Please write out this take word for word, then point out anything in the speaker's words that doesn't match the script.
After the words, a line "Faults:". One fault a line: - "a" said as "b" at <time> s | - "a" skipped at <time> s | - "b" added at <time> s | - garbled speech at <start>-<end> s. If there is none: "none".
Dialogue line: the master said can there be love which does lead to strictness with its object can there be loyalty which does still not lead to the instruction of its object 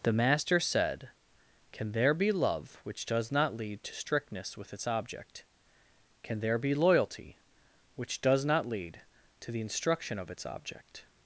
the master said can there be love which does not lead to strictness with its object can there be loyalty which does not lead to the instruction of its object
Faults:
- "not" added at 3.3 s
- "still" skipped at 8.4 s